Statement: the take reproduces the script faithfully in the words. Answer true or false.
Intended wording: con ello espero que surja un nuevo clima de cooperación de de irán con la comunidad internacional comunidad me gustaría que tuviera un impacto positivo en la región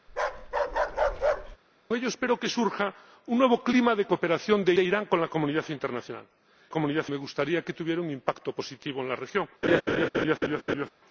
true